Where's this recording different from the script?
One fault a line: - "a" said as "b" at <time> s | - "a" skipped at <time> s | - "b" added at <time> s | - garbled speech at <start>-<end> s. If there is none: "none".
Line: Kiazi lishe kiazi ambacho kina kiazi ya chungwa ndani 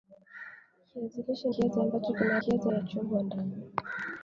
none